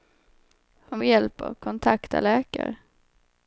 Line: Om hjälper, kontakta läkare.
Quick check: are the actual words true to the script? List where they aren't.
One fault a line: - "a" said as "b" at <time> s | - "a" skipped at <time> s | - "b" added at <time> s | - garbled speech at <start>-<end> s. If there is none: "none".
none